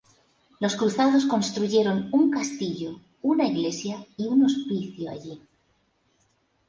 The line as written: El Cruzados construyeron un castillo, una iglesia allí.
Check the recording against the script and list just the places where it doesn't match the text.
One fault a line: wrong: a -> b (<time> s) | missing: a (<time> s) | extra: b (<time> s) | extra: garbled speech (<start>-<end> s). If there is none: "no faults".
wrong: El -> Los (0.6 s)
extra: y un hospicio (4.2 s)